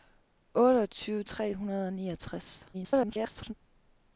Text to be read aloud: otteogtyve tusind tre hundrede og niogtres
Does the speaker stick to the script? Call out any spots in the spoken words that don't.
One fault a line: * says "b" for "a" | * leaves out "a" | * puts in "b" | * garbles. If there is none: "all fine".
* leaves out "tusind"
* garbles